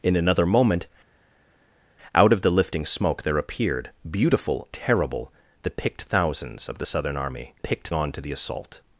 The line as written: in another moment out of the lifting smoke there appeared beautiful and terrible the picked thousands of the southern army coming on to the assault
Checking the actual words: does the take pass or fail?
fail